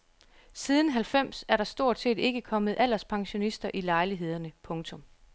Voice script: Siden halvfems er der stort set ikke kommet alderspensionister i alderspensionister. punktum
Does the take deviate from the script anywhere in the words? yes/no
yes